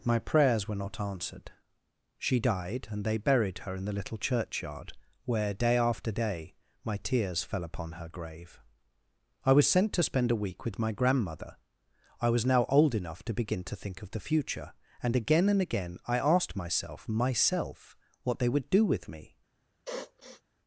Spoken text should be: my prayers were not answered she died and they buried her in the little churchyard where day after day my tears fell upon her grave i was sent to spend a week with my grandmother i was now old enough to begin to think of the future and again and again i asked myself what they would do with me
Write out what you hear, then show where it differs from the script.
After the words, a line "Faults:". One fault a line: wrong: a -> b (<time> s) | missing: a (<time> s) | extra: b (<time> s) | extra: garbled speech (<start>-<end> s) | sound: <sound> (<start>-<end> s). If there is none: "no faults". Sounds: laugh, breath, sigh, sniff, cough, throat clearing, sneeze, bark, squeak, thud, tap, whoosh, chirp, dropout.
my prayers were not answered she died and they buried her in the little churchyard where day after day my tears fell upon her grave i was sent to spend a week with my grandmother i was now old enough to begin to think of the future and again and again i asked myself myself what they would do with me
Faults:
extra: myself (17.1 s)
sound: sniff (19.9-20.4 s)